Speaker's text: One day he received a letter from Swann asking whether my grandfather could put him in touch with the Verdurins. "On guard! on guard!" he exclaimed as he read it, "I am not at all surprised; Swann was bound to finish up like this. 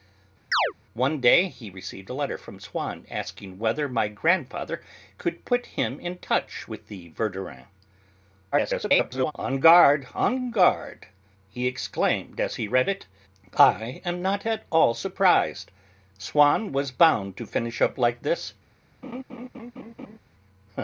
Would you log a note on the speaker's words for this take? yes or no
yes